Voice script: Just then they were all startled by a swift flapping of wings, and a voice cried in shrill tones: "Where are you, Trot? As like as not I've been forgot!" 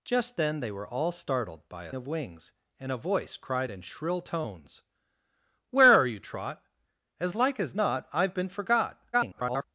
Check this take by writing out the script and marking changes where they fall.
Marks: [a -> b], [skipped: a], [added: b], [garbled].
Just then they were all startled by a [skipped: swift flapping] of wings, and a voice cried in shrill tones: "Where are you, Trot? As like as not I've been forgot!" [garbled]